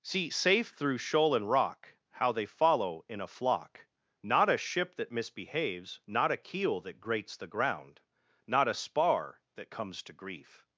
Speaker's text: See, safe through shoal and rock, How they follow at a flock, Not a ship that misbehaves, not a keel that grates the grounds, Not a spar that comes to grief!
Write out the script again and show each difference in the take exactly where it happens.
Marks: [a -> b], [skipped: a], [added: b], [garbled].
See, safe through shoal and rock, How they follow [at -> in] a flock, Not a ship that misbehaves, not a keel that grates the [grounds, -> ground] Not a spar that comes to grief!